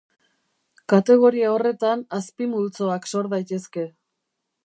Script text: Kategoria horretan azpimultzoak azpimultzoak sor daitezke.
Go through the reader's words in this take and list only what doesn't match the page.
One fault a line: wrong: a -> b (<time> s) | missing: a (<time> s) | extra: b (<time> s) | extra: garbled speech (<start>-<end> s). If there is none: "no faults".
missing: azpimultzoak (3.1 s)